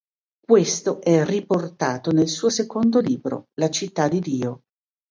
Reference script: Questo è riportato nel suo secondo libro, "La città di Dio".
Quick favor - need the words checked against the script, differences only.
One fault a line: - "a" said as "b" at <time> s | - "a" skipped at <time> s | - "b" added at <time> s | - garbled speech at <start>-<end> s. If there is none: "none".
none